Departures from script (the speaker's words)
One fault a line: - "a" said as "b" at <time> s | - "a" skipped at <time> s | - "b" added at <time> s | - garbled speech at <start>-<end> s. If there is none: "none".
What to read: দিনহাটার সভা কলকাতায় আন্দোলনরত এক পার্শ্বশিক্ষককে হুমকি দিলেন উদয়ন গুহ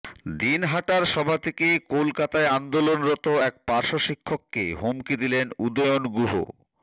- "থেকে" added at 1.4 s